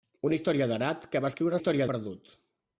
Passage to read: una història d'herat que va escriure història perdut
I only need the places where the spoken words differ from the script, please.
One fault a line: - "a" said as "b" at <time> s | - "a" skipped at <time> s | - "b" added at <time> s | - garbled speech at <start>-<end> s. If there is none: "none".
none